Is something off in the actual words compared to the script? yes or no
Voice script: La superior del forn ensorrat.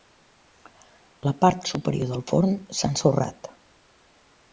yes